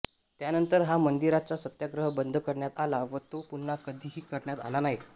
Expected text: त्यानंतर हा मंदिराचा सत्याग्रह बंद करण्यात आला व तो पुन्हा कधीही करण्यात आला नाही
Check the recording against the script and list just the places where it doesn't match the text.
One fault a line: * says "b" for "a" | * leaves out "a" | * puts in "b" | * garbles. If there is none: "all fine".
all fine